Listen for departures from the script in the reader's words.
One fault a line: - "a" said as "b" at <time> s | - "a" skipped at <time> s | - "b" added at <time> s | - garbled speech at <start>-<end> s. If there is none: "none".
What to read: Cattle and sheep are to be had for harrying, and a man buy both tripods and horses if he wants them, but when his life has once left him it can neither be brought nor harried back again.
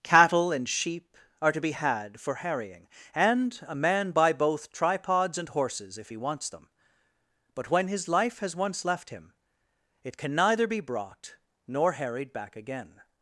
none